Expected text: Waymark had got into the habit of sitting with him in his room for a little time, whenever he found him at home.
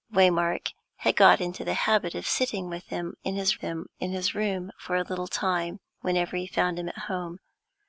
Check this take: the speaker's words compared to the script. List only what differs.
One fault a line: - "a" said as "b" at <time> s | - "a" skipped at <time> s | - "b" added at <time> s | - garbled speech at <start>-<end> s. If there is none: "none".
- "him in his" added at 3.6 s